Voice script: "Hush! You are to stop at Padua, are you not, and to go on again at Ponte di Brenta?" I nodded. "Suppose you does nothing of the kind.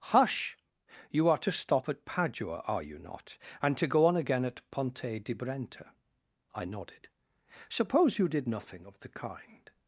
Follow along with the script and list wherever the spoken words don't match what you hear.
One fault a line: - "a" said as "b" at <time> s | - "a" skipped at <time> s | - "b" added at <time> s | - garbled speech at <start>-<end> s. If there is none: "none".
- "does" said as "did" at 8.3 s